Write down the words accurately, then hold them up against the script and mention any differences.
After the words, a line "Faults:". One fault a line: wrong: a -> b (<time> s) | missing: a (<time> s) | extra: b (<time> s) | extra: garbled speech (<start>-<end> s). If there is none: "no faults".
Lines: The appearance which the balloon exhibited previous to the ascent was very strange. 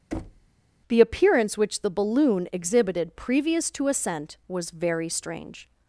The appearance which the balloon exhibited previous to ascent was very strange.
Faults:
missing: the (3.9 s)